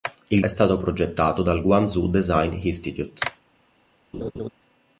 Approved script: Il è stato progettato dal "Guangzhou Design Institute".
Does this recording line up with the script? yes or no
yes